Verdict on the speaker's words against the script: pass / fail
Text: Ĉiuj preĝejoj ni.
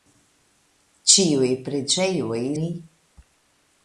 pass